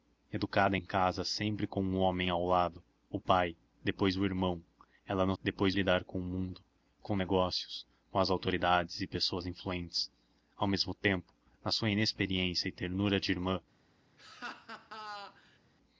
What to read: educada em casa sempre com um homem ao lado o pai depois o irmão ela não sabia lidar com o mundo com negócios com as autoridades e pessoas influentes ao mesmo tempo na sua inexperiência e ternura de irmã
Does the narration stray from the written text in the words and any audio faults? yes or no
yes